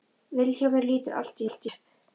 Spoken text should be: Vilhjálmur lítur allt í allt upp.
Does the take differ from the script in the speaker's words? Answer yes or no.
no